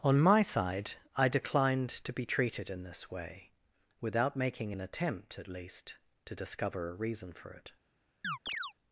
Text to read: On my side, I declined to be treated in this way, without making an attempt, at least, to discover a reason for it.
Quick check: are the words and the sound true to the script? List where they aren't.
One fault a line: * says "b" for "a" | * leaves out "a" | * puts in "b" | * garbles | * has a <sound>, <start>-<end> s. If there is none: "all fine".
* has a chirp, 8.2-8.7 s